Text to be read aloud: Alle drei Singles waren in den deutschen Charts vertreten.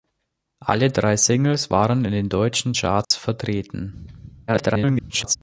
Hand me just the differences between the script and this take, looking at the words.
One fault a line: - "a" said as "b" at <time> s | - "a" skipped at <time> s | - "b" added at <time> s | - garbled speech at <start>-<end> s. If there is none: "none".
- garbled speech at 4.5-5.4 s